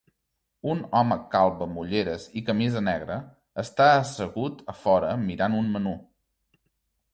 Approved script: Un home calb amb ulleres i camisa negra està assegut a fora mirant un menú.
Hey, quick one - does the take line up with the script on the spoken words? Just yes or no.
yes